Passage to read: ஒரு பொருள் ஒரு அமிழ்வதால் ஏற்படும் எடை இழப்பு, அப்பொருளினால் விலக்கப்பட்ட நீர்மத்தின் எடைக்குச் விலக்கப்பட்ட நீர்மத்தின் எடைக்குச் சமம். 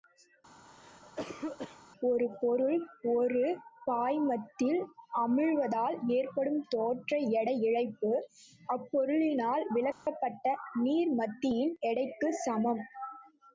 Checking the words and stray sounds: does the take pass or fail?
fail